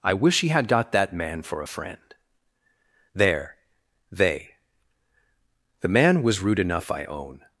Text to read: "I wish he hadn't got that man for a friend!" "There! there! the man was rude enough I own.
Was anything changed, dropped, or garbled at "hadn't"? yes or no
yes